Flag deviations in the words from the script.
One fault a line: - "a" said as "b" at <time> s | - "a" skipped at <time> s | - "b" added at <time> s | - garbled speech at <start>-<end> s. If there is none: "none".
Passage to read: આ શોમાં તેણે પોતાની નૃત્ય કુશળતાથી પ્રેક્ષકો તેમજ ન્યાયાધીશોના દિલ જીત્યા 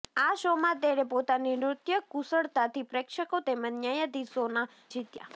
- "દિલ" skipped at 4.7 s